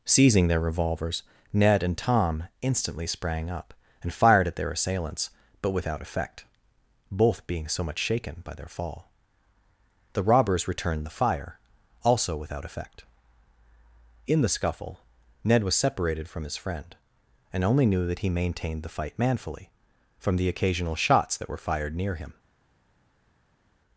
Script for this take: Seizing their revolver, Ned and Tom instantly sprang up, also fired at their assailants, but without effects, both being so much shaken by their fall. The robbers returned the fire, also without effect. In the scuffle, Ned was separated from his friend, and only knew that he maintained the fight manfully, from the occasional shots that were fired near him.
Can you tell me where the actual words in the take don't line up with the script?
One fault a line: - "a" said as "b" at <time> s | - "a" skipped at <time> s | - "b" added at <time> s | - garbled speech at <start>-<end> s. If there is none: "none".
- "revolver" said as "revolvers" at 0.6 s
- "also" said as "and" at 4.0 s
- "effects" said as "effect" at 6.0 s